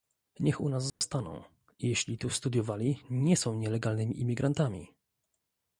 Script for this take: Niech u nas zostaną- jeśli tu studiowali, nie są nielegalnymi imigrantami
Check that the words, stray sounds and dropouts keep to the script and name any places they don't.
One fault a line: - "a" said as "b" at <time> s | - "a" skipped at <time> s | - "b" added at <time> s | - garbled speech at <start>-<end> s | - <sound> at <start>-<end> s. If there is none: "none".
- dropout at 0.9-1.0 s